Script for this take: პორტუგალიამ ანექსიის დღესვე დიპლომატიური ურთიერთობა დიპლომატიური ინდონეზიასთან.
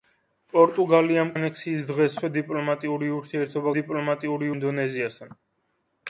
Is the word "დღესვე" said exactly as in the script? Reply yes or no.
yes